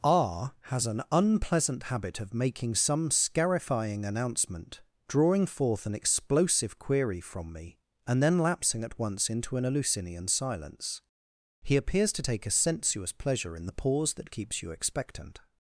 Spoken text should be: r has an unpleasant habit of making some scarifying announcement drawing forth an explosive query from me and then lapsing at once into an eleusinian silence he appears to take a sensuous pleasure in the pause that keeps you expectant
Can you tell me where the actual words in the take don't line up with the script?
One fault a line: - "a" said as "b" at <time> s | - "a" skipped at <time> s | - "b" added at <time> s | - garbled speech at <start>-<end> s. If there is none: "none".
none